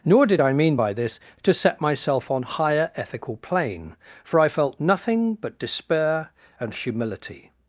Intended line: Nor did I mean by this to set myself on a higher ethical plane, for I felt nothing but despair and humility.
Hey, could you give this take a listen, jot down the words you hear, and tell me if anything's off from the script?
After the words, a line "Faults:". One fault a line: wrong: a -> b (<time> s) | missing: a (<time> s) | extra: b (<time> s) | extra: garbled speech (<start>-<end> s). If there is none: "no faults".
Nor did I mean by this to set myself on higher ethical plane, for I felt nothing but despair and humility.
Faults:
missing: a (2.4 s)